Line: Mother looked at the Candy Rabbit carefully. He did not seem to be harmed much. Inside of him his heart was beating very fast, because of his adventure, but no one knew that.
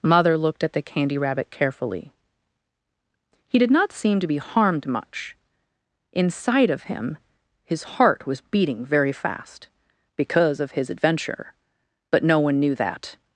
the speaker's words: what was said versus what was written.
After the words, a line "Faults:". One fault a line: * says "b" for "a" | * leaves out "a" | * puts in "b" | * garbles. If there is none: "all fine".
Mother looked at the Candy Rabbit carefully. He did not seem to be harmed much. Inside of him his heart was beating very fast, because of his adventure, but no one knew that.
Faults:
all fine